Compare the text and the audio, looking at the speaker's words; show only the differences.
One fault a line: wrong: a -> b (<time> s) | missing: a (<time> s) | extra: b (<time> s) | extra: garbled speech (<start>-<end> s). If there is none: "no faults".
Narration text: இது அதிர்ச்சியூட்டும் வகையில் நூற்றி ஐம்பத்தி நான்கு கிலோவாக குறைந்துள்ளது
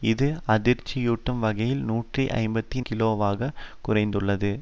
missing: நான்கு (2.8 s)